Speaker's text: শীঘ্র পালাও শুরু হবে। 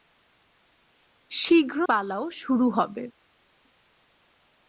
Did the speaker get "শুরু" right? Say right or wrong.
right